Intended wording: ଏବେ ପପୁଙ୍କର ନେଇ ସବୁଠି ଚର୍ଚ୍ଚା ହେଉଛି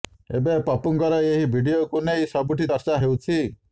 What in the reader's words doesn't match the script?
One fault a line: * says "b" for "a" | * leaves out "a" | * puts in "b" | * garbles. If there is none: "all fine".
* puts in "ଏହି ଭିଡିଓକୁ"